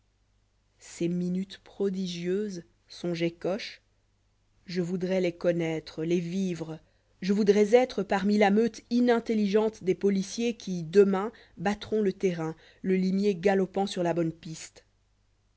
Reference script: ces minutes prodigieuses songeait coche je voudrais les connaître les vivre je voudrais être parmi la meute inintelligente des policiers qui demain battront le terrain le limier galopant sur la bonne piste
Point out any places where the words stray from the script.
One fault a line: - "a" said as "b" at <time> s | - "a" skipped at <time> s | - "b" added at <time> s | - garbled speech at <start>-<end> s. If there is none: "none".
none